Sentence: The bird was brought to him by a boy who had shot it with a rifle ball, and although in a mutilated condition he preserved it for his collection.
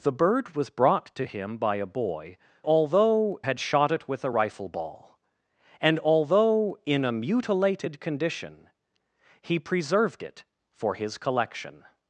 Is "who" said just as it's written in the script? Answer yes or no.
no